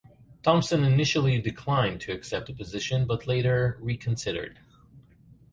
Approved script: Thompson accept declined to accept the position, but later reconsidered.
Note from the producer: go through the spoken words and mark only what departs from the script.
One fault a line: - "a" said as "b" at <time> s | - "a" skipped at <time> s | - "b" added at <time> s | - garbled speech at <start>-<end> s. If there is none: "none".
- "accept" said as "initially" at 0.8 s